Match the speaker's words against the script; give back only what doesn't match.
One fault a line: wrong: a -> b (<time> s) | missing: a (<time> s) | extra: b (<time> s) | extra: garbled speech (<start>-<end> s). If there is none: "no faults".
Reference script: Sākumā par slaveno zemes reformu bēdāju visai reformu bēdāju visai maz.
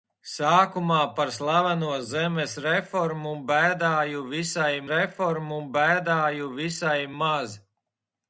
no faults